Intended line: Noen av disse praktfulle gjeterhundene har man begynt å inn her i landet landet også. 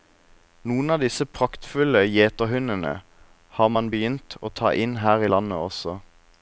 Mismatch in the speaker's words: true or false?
true